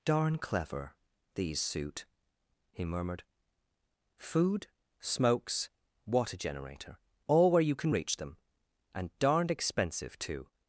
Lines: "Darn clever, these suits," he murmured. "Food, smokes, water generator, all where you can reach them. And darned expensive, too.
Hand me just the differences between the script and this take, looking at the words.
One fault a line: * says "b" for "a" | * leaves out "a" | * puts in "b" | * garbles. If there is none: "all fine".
* says "suit" for "suits"